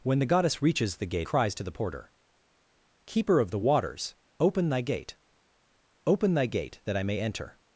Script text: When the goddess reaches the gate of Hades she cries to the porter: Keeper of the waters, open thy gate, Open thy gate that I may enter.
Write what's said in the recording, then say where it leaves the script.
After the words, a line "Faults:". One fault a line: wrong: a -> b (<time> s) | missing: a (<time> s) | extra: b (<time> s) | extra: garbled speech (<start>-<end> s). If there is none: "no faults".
When the goddess reaches the gate cries to the porter: Keeper of the waters, open thy gate, Open thy gate that I may enter.
Faults:
missing: of Hades she (1.3 s)